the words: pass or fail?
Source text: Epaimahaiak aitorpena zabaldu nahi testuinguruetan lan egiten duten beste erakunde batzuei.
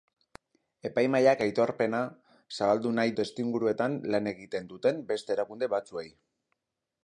pass